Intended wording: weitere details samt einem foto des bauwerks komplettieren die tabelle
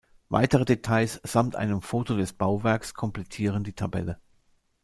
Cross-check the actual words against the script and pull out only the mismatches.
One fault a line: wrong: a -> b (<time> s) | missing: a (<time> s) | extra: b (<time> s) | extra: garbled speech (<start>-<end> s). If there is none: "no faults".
no faults